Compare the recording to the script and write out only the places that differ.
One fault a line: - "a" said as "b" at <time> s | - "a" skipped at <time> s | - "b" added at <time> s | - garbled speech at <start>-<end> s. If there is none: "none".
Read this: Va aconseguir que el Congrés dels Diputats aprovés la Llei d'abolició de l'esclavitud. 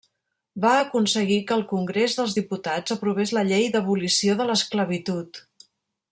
none